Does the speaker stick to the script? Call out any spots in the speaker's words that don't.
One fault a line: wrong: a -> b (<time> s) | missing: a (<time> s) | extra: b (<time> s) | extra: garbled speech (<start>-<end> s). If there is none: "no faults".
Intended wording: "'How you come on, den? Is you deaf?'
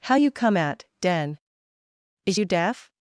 wrong: on -> at (0.6 s)